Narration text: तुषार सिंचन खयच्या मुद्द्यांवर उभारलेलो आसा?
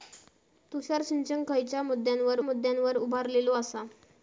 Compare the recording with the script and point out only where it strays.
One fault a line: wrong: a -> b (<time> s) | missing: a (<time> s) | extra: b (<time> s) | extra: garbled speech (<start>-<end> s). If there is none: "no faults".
extra: मुद्द्यांवर (2.4 s)